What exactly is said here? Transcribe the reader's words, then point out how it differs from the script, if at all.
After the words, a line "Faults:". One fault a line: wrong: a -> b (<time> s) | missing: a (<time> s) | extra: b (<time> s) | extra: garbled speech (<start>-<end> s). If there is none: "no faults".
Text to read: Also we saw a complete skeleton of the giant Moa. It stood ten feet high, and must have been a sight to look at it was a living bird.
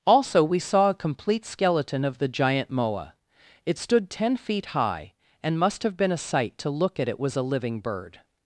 Also we saw a complete skeleton of the giant Moa. It stood ten feet high, and must have been a sight to look at it was a living bird.
Faults:
no faults